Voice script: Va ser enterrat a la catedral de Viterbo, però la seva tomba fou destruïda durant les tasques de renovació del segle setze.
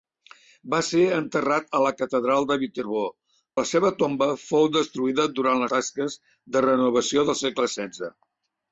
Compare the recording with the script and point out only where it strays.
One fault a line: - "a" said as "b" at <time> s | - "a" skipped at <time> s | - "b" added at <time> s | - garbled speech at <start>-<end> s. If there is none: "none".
- "però" skipped at 3.0 s
- "les" skipped at 5.7 s